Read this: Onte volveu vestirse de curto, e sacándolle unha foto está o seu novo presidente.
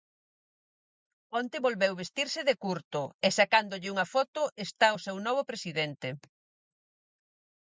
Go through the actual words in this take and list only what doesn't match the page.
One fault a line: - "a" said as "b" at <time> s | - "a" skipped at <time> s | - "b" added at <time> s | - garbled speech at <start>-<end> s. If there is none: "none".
none